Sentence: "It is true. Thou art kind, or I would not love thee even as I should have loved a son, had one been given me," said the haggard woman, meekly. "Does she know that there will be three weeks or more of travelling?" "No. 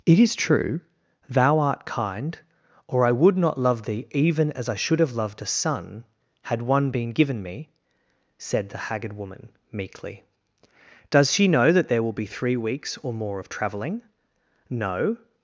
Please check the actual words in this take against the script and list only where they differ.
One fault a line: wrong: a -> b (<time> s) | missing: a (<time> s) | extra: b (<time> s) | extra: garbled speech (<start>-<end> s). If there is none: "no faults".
no faults